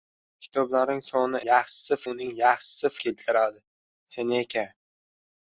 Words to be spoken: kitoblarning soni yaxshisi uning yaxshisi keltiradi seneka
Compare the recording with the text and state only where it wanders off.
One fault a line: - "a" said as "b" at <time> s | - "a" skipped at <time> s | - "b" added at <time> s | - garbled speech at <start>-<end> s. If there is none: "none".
none